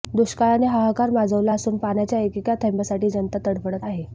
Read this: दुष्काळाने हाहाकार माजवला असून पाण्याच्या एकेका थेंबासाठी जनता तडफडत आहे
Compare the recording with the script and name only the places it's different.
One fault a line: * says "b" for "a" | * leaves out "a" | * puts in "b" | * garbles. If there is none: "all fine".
all fine